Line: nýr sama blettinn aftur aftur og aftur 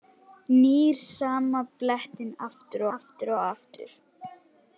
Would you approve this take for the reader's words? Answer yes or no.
yes